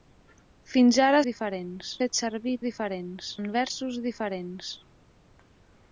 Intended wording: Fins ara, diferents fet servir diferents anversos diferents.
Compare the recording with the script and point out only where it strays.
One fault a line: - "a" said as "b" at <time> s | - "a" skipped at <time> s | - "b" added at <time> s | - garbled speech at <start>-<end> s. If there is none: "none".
none